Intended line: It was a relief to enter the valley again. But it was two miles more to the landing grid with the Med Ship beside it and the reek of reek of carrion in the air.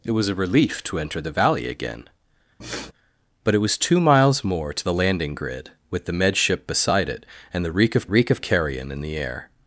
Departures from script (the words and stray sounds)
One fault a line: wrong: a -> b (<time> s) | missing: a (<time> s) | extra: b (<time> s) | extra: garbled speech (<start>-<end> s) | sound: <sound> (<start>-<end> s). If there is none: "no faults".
sound: sniff (2.6-2.9 s)